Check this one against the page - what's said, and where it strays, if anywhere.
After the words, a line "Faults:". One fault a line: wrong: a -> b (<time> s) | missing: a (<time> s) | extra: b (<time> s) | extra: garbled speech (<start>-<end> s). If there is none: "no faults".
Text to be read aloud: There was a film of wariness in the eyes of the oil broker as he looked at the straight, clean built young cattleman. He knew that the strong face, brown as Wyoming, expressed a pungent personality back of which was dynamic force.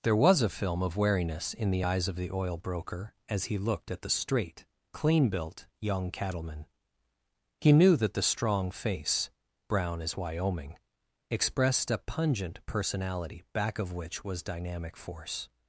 There was a film of wariness in the eyes of the oil broker as he looked at the straight, clean built young cattleman. He knew that the strong face, brown as Wyoming, expressed a pungent personality back of which was dynamic force.
Faults:
no faults